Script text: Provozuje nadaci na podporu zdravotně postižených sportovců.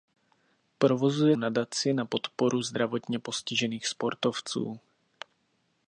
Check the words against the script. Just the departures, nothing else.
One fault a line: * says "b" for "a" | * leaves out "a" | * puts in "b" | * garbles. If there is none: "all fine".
all fine